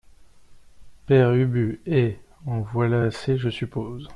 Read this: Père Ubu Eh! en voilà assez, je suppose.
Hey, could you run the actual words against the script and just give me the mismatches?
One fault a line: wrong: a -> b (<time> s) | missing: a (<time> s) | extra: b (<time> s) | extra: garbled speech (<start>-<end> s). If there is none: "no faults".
no faults